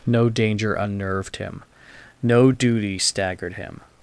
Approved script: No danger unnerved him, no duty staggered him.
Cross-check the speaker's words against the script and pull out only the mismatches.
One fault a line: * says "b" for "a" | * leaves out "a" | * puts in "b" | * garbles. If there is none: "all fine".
all fine